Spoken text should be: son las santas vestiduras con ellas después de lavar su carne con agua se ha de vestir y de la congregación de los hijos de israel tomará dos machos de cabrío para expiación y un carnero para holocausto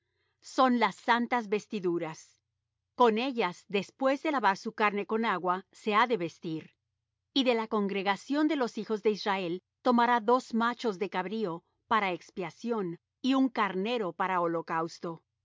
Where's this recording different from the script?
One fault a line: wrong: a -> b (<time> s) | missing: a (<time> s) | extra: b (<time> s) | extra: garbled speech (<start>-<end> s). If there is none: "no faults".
no faults